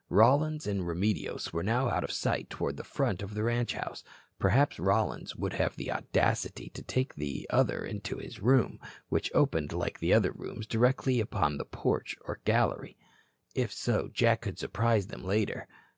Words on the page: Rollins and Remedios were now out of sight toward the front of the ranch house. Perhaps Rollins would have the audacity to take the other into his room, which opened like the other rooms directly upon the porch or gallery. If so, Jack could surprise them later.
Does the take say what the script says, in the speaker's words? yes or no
yes